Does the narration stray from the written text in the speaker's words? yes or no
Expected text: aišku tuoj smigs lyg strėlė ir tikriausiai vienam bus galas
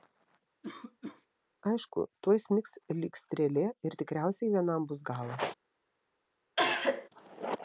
no